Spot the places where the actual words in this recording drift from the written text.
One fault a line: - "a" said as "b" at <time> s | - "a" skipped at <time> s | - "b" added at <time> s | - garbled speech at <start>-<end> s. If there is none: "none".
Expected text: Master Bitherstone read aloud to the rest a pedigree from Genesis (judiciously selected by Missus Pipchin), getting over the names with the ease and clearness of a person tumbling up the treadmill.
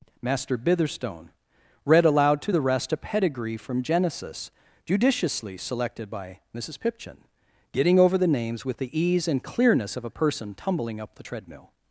none